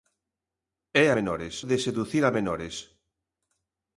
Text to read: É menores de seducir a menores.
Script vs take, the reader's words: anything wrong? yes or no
no